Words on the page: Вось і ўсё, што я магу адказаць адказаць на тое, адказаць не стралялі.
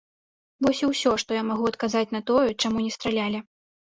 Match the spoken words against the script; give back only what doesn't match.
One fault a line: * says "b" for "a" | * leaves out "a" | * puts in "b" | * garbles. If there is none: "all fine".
* leaves out "адказаць"
* says "чаму" for "адказаць"